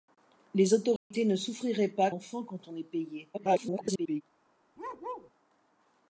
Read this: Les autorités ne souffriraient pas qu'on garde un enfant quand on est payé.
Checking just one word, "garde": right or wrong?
wrong